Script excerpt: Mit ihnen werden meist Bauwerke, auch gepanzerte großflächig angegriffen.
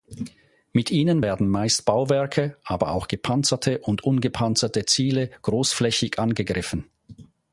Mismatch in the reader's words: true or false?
true